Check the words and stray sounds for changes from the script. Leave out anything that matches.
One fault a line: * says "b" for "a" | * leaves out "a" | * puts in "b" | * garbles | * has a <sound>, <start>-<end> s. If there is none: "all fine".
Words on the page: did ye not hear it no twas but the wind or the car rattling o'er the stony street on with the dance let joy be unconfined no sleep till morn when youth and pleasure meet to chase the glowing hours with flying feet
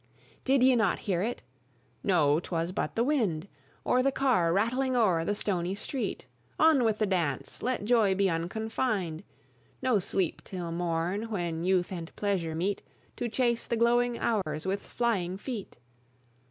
* has a dropout, 14.4-14.5 s